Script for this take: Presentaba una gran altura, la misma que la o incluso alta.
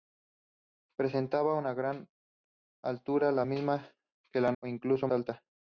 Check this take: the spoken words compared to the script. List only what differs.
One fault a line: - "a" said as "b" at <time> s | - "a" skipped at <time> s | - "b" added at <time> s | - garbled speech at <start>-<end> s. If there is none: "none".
none